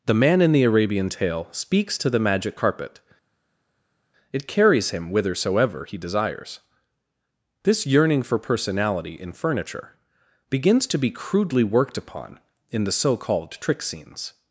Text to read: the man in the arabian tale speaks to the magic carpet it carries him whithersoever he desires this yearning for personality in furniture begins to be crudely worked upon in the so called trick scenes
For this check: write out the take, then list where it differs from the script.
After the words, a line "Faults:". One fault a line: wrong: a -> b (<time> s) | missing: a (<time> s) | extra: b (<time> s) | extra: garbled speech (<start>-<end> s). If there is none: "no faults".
the man in the arabian tale speaks to the magic carpet it carries him whithersoever he desires this yearning for personality in furniture begins to be crudely worked upon in the so called trick scenes
Faults:
no faults